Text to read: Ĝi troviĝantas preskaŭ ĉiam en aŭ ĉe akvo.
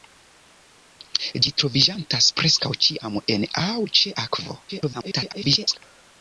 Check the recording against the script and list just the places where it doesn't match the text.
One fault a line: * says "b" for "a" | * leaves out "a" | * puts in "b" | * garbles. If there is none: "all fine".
* garbles